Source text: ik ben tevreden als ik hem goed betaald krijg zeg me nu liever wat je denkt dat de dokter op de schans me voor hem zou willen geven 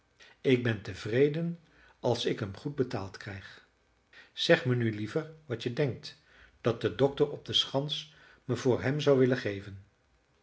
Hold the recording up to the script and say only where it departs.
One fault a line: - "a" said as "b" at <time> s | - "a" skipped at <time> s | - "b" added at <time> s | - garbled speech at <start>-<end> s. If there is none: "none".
none